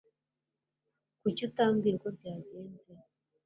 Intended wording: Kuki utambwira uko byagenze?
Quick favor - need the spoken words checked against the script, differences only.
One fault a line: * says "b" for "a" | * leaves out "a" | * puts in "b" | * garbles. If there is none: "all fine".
all fine